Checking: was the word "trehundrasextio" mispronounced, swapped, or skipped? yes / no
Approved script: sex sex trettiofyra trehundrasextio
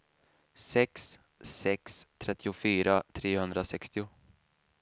no